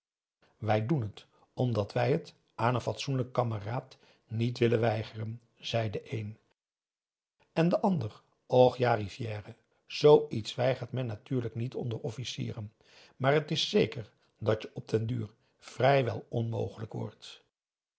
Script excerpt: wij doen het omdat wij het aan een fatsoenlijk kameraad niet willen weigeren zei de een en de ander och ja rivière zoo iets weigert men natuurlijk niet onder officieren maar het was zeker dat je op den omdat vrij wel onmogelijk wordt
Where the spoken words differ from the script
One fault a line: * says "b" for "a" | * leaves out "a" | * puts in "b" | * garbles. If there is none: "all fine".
* says "is" for "was"
* says "duur" for "omdat"